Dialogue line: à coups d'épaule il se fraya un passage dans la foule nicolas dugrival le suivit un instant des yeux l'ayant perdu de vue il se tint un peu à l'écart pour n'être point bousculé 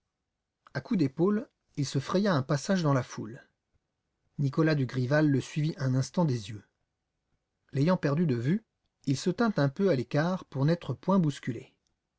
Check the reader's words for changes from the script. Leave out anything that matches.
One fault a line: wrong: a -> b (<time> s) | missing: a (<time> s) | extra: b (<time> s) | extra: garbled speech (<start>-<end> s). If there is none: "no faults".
no faults